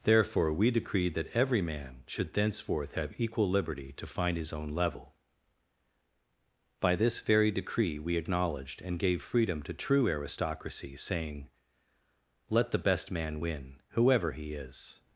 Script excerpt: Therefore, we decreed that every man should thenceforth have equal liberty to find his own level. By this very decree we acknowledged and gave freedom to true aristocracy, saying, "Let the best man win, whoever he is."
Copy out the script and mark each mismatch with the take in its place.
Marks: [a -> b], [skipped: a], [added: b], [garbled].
Therefore, we decreed that every man should thenceforth have equal liberty to find his own level. By this very decree we acknowledged and gave freedom to true aristocracy, saying, "Let the best man win, whoever he is."